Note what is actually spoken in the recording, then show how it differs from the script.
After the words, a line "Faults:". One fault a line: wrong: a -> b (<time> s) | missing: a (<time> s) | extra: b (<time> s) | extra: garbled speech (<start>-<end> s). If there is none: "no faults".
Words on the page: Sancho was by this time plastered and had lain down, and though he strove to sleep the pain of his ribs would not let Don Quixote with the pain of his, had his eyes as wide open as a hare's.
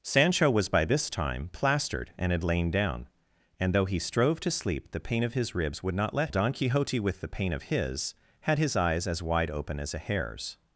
Sancho was by this time plastered and had lain down, and though he strove to sleep the pain of his ribs would not let Don Quixote with the pain of his, had his eyes as wide open as a hare's.
Faults:
no faults